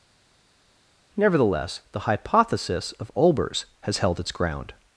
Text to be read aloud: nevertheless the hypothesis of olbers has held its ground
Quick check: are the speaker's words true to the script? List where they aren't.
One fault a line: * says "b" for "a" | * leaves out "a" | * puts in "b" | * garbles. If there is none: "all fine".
all fine